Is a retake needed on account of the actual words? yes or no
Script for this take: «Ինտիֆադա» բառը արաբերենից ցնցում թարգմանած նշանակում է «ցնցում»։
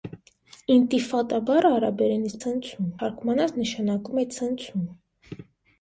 no